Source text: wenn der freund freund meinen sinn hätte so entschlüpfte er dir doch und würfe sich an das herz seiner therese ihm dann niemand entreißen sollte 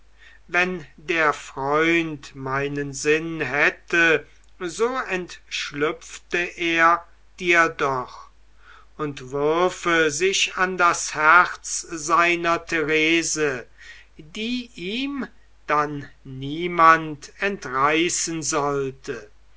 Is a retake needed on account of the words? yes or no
yes